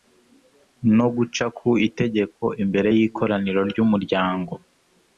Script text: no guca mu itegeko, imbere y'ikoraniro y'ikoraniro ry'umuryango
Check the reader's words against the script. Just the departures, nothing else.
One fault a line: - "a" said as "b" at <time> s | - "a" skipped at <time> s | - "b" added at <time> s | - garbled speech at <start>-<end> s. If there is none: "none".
- "mu" said as "ku" at 1.6 s
- "y'ikoraniro" skipped at 3.6 s